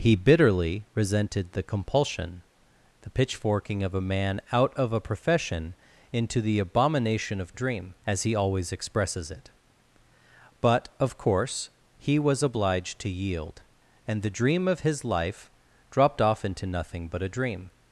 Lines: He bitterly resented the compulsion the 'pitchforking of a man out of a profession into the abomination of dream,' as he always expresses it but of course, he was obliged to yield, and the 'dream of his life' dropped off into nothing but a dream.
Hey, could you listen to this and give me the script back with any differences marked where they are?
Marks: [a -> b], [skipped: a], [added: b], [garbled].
He bitterly resented the compulsion the 'pitchforking of a man out of a profession into the abomination of dream,' as he always expresses it but of course, he was obliged to yield, and the 'dream of his life' dropped off into nothing but a dream.